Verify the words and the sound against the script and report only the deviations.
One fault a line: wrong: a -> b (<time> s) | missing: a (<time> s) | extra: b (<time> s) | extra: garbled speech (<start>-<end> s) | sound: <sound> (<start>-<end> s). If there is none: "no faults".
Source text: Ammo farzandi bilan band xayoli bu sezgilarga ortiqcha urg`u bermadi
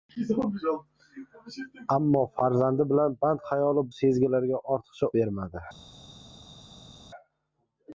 missing: bu (3.9 s)
missing: urg`u (5.1 s)